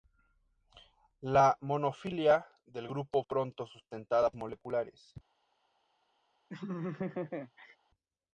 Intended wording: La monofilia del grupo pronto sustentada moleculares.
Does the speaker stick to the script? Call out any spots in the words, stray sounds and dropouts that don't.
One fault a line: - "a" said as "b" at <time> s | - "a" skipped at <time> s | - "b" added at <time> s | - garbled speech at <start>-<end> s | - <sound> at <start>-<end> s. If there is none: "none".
- laugh at 6.5-7.8 s